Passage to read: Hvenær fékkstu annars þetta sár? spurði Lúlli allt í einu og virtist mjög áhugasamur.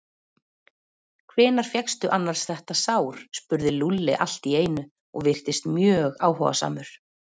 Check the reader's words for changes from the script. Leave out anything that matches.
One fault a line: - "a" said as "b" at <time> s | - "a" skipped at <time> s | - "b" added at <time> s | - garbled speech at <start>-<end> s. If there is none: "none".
none